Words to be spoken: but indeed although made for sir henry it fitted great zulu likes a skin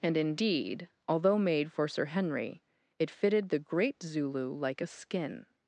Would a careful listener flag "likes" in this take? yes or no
yes